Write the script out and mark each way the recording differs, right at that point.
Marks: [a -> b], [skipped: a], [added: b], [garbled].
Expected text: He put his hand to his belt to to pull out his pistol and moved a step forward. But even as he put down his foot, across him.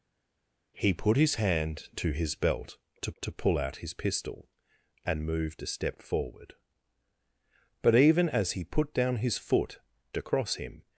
He put his hand to his belt to to pull out his pistol and moved a step forward. But even as he put down his foot, across him.